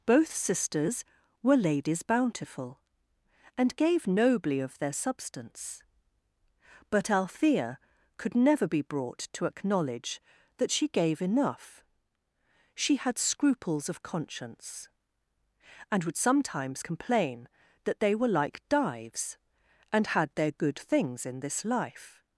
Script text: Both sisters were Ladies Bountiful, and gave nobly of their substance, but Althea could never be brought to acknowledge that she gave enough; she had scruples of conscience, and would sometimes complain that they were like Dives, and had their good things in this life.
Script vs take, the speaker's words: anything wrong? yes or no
no